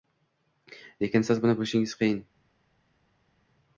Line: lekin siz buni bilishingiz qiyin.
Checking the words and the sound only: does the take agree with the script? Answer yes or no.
yes